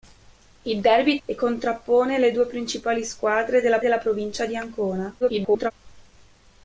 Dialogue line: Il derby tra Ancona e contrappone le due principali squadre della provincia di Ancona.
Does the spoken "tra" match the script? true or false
false